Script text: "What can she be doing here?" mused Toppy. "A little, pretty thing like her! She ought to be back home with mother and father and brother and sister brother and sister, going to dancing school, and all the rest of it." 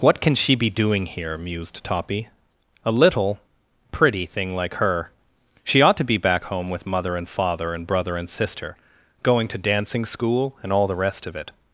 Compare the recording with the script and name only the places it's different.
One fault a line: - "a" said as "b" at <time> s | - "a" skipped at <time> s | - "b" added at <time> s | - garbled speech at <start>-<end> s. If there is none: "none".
- "brother and sister" skipped at 8.8 s